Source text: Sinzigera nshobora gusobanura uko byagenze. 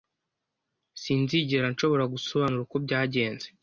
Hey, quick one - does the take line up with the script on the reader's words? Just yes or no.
yes